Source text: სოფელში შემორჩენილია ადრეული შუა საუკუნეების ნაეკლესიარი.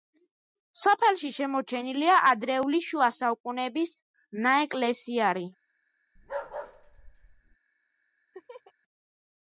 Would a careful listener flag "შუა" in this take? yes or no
no